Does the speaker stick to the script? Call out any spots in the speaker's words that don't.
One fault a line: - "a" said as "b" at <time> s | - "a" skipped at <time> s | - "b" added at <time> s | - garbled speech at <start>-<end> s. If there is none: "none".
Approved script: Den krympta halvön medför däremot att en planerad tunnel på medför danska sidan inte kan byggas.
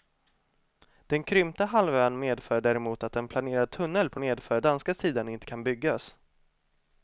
none